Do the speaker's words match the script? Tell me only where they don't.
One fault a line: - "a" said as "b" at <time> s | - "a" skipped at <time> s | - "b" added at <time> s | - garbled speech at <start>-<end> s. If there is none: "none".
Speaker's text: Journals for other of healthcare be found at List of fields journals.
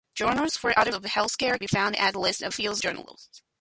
none